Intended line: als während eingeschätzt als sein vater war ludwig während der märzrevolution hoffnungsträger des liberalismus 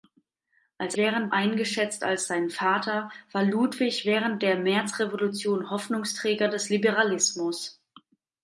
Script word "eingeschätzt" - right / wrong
right